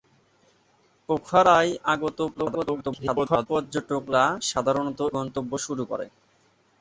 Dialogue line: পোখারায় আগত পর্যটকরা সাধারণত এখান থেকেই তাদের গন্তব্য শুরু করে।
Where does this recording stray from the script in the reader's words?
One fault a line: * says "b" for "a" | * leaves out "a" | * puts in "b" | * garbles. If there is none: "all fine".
* garbles
* leaves out "এখান থেকেই তাদের"